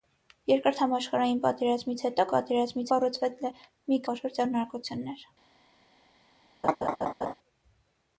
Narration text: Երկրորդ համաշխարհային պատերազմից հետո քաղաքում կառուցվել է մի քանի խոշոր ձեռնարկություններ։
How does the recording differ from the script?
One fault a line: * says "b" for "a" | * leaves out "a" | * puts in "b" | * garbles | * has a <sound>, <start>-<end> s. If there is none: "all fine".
* says "պատերազմից" for "քաղաքում"
* leaves out "քանի"
* has a laugh, 6.6-7.3 s